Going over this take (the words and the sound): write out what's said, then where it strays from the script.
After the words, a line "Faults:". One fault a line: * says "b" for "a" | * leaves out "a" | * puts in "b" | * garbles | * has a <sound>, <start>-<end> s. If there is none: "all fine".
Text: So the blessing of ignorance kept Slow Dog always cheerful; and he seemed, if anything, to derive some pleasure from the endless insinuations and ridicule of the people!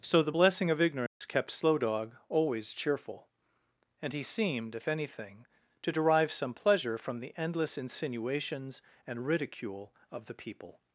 So the blessing of ignorance kept Slow Dog always cheerful; and he seemed, if anything, to derive some pleasure from the endless insinuations and ridicule of the people!
Faults:
* has a dropout, 1.1-1.2 s